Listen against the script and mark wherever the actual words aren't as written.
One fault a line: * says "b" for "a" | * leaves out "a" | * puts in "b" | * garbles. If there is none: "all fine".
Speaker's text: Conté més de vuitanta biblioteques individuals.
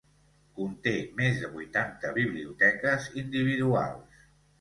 all fine